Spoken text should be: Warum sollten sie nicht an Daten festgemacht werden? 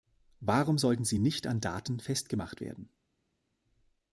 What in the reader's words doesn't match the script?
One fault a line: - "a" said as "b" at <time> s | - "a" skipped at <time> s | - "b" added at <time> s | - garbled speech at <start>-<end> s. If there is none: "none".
none